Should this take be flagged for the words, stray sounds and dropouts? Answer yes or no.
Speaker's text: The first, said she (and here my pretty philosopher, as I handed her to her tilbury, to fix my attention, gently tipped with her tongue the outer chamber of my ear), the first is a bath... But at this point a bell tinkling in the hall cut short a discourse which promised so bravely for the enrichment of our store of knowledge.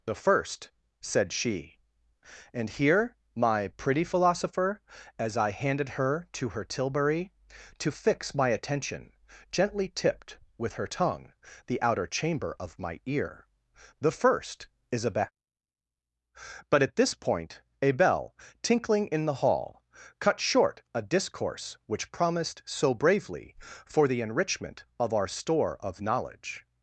yes